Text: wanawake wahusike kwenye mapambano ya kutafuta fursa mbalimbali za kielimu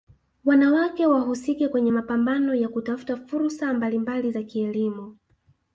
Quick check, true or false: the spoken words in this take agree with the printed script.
true